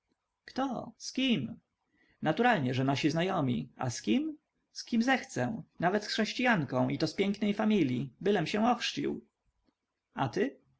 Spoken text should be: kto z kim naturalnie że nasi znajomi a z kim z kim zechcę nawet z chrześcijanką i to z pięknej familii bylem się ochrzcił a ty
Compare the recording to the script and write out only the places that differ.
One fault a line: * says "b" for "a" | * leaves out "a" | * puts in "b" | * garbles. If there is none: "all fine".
all fine